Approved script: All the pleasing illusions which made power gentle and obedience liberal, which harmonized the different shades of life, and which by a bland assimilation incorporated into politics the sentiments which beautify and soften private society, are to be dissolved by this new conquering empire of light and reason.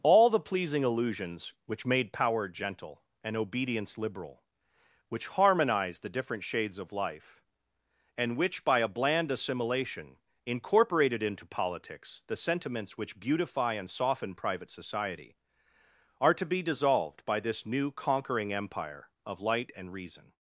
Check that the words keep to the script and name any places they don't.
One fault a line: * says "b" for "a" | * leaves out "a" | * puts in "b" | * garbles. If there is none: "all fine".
all fine